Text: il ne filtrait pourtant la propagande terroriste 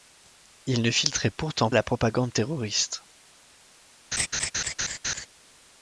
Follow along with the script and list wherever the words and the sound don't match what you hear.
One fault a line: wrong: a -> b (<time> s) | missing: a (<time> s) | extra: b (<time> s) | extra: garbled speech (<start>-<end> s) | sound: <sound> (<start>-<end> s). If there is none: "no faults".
sound: laugh (4.1-5.3 s)